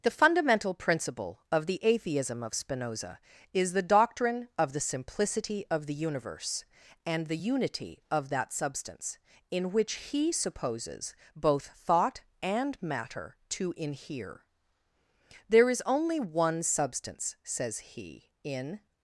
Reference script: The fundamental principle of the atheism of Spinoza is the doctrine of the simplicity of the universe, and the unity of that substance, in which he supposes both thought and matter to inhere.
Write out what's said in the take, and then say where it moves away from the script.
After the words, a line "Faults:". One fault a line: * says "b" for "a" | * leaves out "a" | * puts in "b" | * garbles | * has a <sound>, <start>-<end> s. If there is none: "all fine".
The fundamental principle of the atheism of Spinoza is the doctrine of the simplicity of the universe, and the unity of that substance, in which he supposes both thought and matter to inhere. There is only one substance, says he, in
Faults:
* puts in "There is only one substance says he in"